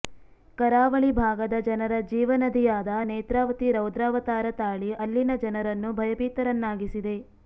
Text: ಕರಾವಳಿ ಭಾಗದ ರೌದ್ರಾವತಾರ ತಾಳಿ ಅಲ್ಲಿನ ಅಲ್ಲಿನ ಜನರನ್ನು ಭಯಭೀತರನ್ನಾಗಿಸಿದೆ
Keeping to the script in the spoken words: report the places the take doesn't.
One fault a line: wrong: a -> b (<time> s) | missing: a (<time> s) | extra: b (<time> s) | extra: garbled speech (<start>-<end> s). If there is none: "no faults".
extra: ಜನರ ಜೀವನದಿಯಾದ ನೇತ್ರಾವತಿ (1.7 s)
missing: ಅಲ್ಲಿನ (5.3 s)